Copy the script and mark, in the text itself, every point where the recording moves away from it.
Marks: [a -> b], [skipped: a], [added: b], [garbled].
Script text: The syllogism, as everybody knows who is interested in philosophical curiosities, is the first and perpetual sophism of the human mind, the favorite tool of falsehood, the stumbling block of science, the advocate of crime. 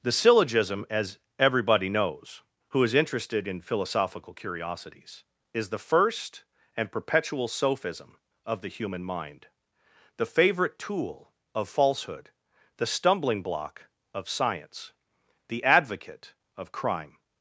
The syllogism, as everybody knows who is interested in philosophical curiosities, is the first and perpetual sophism of the human mind, the favorite tool of falsehood, the stumbling block of science, the advocate of crime.